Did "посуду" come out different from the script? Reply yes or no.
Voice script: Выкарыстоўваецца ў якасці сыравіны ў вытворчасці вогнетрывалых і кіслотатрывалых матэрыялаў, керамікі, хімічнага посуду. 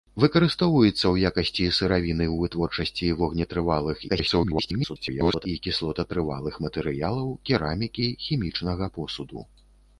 no